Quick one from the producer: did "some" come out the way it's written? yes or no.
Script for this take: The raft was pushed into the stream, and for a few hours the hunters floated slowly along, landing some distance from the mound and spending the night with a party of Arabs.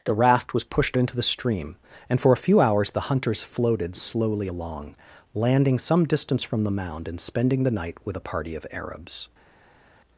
yes